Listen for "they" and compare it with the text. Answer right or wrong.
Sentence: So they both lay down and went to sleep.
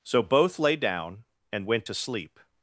wrong